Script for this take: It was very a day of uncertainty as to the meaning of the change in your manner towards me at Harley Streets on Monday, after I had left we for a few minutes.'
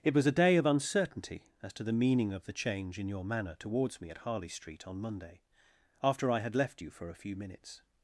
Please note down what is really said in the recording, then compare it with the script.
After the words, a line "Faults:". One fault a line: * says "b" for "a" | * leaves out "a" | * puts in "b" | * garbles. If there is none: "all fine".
It was a day of uncertainty as to the meaning of the change in your manner towards me at Harley Street on Monday, after I had left you for a few minutes.'
Faults:
* leaves out "very"
* says "Street" for "Streets"
* says "you" for "we"